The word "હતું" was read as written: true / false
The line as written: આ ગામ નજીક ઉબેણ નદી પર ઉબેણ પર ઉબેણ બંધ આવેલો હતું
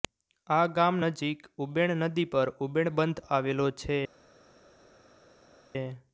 false